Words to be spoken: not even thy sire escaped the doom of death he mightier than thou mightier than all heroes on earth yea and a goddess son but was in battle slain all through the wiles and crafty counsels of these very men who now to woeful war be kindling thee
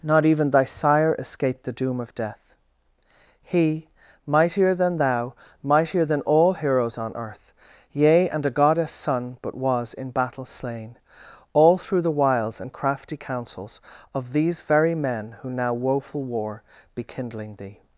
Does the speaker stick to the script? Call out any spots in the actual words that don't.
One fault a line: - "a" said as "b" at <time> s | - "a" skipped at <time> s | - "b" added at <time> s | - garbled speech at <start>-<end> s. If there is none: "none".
- "to" skipped at 15.7 s